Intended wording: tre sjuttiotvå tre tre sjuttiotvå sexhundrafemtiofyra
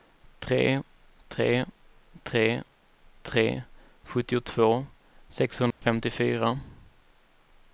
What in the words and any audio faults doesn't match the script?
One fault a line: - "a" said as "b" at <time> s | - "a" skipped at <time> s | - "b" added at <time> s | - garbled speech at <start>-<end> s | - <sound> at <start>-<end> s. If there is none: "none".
- "sjuttiotvå" said as "tre" at 1.3 s
- dropout at 5.7-5.8 s